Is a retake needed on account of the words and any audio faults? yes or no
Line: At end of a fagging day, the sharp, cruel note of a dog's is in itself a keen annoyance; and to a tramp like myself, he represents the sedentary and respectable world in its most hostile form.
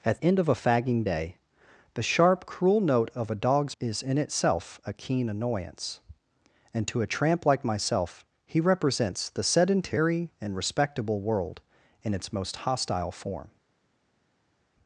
no